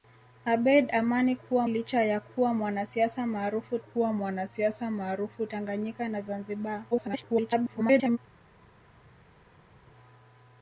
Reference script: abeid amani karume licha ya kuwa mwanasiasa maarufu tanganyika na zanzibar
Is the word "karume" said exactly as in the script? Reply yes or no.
no